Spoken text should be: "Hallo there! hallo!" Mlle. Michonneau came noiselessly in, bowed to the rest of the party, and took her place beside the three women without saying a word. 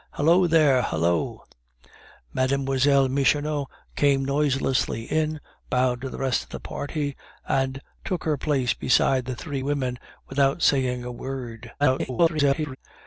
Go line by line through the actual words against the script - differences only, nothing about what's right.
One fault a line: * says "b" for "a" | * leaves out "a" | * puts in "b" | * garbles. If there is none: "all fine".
* garbles